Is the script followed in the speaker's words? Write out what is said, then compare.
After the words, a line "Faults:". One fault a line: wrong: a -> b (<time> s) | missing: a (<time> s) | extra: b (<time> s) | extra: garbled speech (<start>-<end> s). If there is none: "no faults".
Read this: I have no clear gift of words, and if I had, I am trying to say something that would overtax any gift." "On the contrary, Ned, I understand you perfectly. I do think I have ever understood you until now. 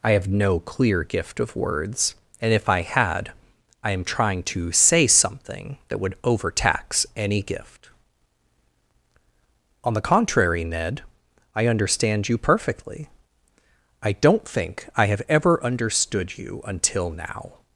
I have no clear gift of words, and if I had, I am trying to say something that would overtax any gift." "On the contrary, Ned, I understand you perfectly. I don't think I have ever understood you until now.
Faults:
wrong: do -> don't (14.1 s)